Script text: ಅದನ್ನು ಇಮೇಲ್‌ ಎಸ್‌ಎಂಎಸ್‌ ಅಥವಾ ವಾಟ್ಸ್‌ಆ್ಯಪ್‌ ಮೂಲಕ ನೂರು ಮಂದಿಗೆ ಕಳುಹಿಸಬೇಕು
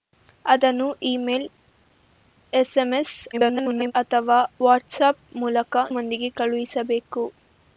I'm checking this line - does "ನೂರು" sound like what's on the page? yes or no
no